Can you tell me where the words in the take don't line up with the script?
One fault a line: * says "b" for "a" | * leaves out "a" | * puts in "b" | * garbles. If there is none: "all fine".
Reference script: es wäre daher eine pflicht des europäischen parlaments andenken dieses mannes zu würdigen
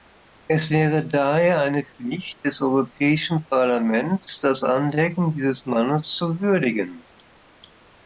* puts in "das"